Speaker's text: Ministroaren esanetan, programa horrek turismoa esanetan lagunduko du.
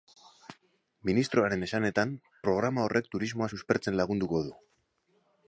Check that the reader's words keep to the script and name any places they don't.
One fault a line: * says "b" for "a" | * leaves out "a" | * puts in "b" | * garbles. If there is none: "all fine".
* says "suspertzen" for "esanetan"